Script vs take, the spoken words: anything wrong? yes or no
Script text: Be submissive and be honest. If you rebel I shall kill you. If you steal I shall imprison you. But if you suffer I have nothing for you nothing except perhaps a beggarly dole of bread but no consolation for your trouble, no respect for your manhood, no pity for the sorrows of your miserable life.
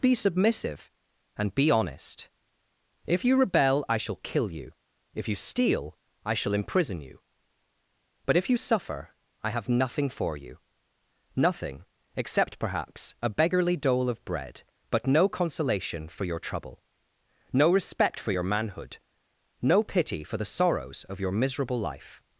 no